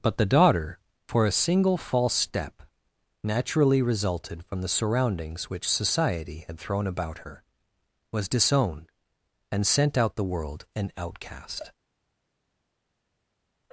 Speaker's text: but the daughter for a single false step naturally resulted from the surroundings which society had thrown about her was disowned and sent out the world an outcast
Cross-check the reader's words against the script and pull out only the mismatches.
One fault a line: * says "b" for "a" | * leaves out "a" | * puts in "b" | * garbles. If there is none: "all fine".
all fine